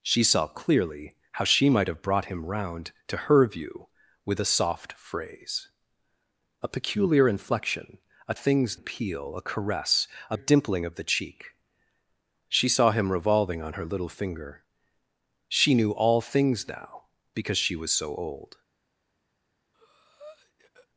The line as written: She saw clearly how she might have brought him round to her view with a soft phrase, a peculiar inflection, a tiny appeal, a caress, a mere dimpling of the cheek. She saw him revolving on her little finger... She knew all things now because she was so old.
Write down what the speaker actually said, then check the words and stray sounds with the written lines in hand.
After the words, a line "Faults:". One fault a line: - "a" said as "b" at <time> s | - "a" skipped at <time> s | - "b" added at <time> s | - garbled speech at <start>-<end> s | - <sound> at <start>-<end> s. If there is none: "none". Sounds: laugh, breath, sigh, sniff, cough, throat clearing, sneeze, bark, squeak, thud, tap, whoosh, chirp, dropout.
She saw clearly how she might have brought him round to her view with a soft phrase, a peculiar inflection, a things appeal, a caress, a dimpling of the cheek. She saw him revolving on her little finger... She knew all things now because she was so old.
Faults:
- "tiny" said as "things" at 8.3 s
- "mere" skipped at 10.4 s
- breath at 19.7-20.9 s